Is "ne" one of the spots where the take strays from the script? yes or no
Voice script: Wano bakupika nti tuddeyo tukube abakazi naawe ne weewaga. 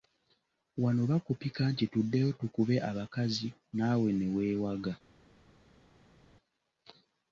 no